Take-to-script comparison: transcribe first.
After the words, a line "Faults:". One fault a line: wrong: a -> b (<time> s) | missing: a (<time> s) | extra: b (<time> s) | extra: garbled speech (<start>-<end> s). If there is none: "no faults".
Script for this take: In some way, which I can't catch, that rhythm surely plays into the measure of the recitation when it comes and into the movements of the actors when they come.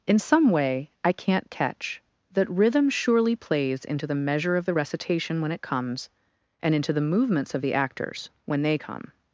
In some way, I can't catch, that rhythm surely plays into the measure of the recitation when it comes and into the movements of the actors when they come.
Faults:
missing: which (0.9 s)